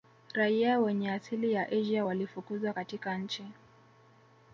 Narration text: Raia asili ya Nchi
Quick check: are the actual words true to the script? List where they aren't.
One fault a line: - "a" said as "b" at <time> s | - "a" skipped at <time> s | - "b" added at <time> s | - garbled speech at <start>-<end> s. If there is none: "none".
- "wenye" added at 0.8 s
- "Asia walifukuzwa katika" added at 1.7 s